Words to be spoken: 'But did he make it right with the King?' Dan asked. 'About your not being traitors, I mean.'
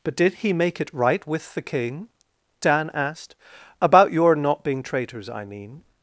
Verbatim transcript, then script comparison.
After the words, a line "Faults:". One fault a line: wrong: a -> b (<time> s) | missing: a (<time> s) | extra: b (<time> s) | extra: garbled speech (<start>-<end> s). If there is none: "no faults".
'But did he make it right with the King?' Dan asked. 'About your not being traitors, I mean.'
Faults:
no faults